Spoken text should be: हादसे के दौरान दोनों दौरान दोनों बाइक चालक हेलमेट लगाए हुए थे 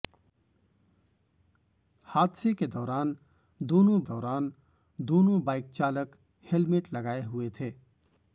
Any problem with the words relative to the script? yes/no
no